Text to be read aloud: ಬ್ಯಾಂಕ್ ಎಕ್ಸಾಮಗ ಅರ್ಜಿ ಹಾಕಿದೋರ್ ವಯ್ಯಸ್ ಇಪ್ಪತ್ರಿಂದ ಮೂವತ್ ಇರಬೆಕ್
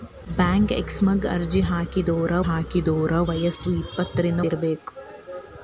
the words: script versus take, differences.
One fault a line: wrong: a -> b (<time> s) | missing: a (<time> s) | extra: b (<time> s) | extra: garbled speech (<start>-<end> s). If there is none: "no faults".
extra: ಹಾಕಿದೋರ್ (2.4 s)
missing: ಮೂವತ್ (4.4 s)